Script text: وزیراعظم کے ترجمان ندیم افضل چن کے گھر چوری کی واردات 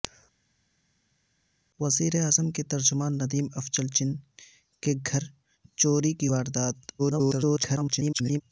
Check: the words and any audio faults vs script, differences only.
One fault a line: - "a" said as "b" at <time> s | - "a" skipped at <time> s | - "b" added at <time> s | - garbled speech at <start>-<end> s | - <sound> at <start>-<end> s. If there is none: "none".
- garbled speech at 7.0-8.4 s